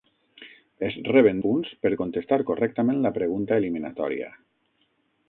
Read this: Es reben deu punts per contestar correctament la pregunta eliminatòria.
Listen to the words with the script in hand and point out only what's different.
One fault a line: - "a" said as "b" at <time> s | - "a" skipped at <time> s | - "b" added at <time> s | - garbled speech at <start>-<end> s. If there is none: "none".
- "deu" skipped at 1.4 s